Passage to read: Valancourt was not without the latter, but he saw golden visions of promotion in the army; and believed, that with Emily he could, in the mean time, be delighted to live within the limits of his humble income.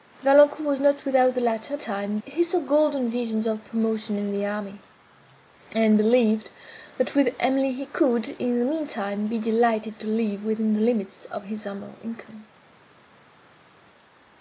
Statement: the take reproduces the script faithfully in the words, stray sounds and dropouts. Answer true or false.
false